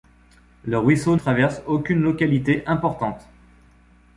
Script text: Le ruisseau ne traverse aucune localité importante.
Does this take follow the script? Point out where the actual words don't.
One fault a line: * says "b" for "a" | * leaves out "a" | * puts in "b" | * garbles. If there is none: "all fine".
* leaves out "ne"